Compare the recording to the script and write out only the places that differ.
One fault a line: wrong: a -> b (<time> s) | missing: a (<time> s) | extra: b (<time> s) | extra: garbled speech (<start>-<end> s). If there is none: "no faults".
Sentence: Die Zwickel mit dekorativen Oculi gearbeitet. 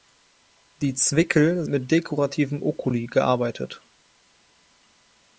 no faults